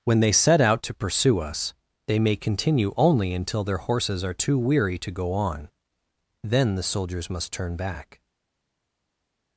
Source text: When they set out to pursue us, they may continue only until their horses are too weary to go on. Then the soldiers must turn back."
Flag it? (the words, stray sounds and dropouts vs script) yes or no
no